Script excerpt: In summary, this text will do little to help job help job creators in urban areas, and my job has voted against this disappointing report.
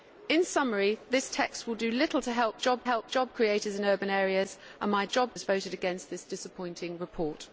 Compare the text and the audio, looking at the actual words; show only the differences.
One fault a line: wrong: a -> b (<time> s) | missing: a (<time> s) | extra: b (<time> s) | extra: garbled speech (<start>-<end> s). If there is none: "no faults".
no faults